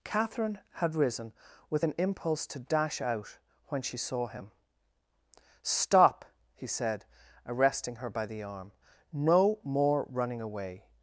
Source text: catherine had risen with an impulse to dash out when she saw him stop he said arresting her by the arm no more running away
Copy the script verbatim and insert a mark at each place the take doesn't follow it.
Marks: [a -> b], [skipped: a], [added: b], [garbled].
catherine had risen with an impulse to dash out when she saw him stop he said arresting her by the arm no more running away